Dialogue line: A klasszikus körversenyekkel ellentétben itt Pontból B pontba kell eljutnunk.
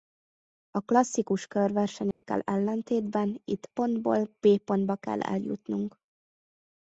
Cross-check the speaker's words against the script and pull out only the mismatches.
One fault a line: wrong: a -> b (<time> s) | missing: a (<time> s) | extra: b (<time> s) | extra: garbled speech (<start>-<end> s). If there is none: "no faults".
no faults